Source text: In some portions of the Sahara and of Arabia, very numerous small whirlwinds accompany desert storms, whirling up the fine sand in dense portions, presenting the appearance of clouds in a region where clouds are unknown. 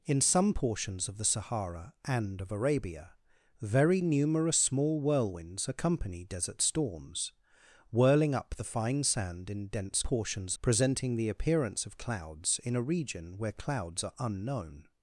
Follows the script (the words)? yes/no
yes